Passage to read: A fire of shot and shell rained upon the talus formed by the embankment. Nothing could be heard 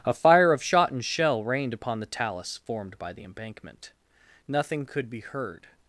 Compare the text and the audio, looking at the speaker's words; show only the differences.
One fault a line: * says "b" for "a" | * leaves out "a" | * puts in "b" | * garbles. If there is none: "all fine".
all fine